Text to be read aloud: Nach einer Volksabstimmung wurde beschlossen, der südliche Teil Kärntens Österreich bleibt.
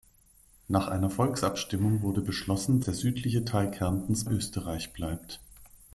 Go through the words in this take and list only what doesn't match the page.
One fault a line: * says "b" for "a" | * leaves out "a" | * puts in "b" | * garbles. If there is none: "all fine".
all fine